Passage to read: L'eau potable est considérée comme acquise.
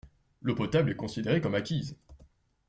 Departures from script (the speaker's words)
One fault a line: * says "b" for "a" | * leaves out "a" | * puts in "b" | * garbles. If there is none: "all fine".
all fine